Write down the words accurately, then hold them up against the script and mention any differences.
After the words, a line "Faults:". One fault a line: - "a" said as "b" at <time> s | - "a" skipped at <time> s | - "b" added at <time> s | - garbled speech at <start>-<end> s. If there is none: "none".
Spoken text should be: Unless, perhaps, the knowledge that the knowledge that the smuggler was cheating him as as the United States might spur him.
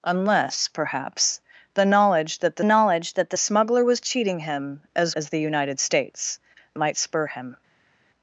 Unless, perhaps, the knowledge that the knowledge that the smuggler was cheating him as as the United States might spur him.
Faults:
none